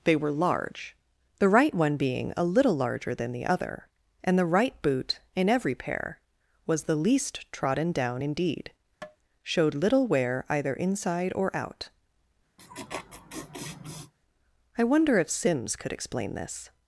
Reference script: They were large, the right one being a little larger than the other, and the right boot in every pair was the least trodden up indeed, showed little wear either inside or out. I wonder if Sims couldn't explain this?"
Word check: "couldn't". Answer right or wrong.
wrong